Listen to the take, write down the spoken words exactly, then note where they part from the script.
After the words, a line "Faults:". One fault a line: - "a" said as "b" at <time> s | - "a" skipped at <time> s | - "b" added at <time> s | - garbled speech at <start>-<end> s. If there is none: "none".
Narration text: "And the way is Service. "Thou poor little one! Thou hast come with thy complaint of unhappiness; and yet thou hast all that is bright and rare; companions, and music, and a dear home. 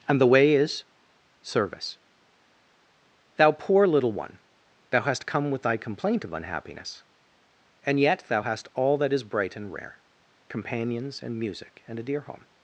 "And the way is Service. "Thou poor little one! Thou hast come with thy complaint of unhappiness; and yet thou hast all that is bright and rare; companions, and music, and a dear home.
Faults:
none